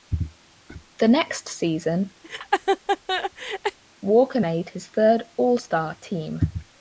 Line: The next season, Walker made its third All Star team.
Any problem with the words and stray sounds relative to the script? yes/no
yes